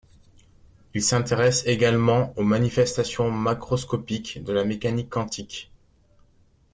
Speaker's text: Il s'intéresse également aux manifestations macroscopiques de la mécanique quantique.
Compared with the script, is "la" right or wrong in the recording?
right